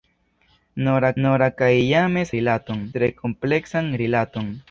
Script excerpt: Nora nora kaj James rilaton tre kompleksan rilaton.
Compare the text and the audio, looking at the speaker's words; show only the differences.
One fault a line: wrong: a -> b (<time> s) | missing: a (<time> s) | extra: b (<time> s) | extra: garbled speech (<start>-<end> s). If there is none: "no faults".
no faults